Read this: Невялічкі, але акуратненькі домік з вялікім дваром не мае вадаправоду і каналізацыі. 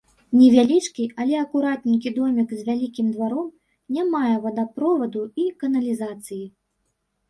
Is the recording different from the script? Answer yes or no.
no